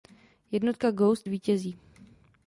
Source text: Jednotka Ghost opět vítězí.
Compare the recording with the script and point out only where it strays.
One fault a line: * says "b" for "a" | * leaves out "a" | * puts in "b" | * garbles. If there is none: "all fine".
* leaves out "opět"